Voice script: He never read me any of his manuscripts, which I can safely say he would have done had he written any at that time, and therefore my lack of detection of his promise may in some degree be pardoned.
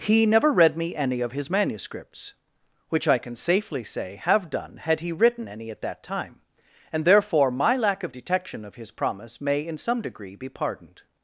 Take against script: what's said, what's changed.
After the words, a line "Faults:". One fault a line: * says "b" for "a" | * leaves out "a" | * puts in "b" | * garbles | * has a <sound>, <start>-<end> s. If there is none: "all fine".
He never read me any of his manuscripts, which I can safely say have done had he written any at that time, and therefore my lack of detection of his promise may in some degree be pardoned.
Faults:
* leaves out "he would"